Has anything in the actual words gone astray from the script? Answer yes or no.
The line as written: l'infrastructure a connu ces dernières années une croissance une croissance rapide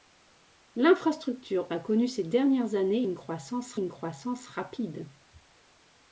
no